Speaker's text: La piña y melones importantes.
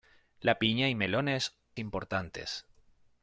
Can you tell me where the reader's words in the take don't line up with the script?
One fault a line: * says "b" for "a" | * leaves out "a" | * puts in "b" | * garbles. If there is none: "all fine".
all fine